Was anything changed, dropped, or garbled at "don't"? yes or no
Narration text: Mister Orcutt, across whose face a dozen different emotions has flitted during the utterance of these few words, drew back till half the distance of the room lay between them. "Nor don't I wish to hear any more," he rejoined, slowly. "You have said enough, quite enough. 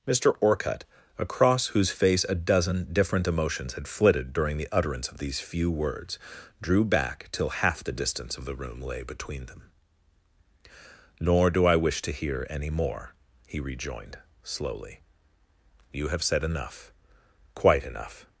yes